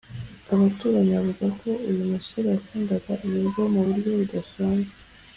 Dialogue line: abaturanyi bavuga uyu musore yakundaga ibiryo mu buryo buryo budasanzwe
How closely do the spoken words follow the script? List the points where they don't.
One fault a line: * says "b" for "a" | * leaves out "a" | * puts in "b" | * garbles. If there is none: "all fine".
* puts in "ko"
* leaves out "buryo"